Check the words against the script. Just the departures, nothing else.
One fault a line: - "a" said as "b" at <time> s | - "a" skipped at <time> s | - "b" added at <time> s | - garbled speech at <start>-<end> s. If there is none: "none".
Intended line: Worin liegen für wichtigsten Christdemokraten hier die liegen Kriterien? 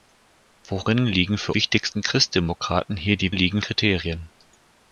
none